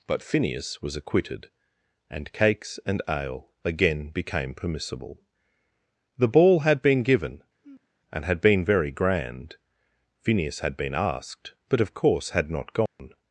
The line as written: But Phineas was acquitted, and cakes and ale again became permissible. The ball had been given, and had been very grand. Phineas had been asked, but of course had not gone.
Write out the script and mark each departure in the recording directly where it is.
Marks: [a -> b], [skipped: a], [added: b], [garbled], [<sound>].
But Phineas was acquitted, and cakes and ale again became permissible. The ball had been given, [sigh] and had been very grand. Phineas had been asked, but of course had not gone. [dropout]